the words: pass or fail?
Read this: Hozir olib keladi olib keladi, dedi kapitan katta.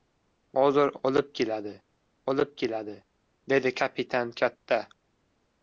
pass